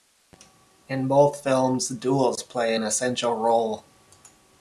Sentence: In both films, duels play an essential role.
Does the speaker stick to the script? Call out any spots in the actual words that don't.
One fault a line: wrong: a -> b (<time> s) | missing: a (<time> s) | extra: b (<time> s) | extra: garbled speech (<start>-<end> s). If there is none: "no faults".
no faults